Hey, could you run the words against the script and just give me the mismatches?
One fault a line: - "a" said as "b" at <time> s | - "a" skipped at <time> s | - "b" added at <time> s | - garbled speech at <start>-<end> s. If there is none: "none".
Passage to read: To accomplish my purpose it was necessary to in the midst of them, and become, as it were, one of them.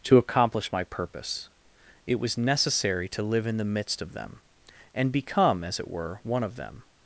- "live" added at 3.2 s